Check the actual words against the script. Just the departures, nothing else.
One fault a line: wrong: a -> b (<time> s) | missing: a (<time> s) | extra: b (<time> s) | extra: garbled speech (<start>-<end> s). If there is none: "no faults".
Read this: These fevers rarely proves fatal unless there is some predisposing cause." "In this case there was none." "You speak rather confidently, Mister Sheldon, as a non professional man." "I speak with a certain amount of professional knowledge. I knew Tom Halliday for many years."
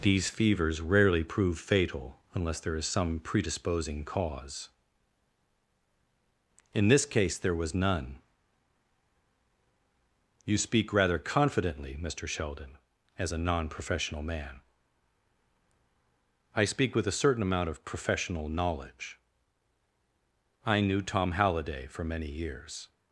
wrong: proves -> prove (1.2 s)